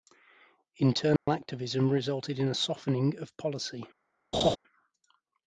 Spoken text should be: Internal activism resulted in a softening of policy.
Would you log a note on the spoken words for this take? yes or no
no